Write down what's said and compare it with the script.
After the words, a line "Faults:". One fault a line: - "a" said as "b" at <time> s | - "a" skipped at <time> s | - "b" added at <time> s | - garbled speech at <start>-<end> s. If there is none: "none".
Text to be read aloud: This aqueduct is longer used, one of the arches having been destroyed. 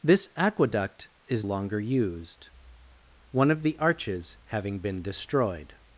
This aqueduct is longer used, one of the arches having been destroyed.
Faults:
none